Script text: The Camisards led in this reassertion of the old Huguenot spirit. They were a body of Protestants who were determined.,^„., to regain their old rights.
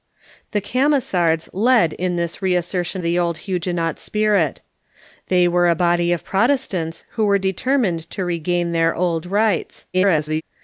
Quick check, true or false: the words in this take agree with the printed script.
false